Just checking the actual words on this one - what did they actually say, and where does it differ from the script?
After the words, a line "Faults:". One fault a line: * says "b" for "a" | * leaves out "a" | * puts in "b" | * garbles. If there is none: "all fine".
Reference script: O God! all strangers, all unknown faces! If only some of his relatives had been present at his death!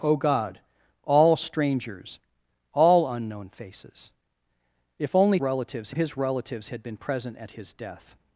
O God! all strangers, all unknown faces! If only relatives of his relatives had been present at his death!
Faults:
* says "relatives" for "some"